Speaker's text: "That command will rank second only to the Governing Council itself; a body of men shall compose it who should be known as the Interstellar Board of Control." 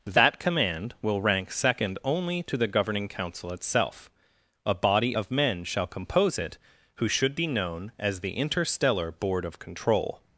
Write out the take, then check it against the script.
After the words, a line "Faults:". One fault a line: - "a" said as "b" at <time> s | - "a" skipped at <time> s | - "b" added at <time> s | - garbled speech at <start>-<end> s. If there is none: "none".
"That command will rank second only to the Governing Council itself; a body of men shall compose it who should be known as the Interstellar Board of Control."
Faults:
none